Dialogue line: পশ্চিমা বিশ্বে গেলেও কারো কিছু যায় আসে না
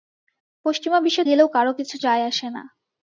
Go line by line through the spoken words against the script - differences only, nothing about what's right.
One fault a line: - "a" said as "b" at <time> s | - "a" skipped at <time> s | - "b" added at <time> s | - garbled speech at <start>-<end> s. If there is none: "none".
none